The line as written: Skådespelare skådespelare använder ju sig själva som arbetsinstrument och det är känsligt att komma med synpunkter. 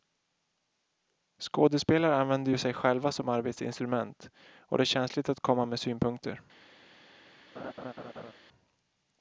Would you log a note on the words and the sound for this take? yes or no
yes